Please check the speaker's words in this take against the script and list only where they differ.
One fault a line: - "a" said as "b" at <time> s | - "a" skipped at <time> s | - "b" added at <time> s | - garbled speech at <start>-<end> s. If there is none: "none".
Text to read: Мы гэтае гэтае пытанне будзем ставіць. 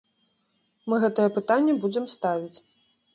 - "гэтае" skipped at 1.3 s